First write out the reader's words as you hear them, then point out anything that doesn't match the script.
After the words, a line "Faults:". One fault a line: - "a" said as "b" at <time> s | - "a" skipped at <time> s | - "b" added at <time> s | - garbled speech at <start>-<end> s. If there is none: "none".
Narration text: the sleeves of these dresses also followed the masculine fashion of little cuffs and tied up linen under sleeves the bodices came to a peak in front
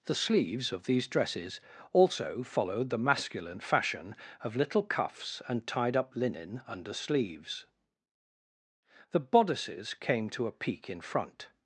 the sleeves of these dresses also followed the masculine fashion of little cuffs and tied up linen under sleeves the bodices came to a peak in front
Faults:
none